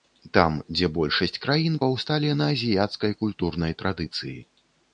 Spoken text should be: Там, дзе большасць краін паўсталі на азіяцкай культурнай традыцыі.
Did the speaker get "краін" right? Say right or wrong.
right